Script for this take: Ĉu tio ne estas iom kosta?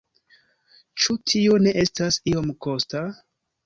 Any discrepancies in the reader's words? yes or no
no